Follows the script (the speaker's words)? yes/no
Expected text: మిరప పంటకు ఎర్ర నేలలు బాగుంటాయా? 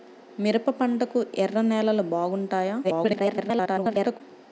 no